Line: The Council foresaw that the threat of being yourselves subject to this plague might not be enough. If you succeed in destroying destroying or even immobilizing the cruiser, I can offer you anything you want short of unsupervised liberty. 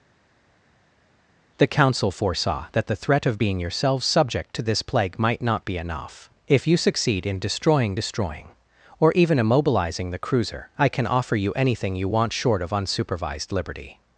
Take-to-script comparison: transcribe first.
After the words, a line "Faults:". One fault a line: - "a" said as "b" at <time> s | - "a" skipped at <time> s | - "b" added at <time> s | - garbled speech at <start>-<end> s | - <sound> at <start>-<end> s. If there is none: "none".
The Council foresaw that the threat of being yourselves subject to this plague might not be enough. If you succeed in destroying destroying or even immobilizing the cruiser, I can offer you anything you want short of unsupervised liberty.
Faults:
none